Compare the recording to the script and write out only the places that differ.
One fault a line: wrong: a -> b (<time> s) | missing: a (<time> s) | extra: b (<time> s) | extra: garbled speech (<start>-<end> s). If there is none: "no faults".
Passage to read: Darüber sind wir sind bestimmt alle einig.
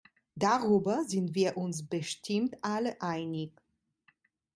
wrong: sind -> uns (1.6 s)